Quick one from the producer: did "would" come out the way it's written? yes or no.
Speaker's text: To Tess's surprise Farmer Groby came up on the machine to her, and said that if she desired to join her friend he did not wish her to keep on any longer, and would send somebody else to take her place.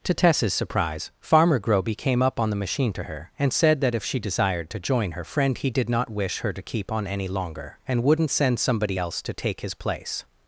no